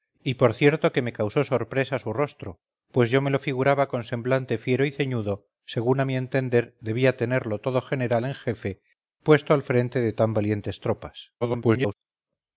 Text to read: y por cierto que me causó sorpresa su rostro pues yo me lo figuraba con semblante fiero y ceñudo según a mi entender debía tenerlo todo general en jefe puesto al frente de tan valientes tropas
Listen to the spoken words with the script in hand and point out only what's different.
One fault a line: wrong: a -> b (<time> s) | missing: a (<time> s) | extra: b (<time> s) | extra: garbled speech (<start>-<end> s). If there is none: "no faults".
extra: garbled speech (11.4-11.9 s)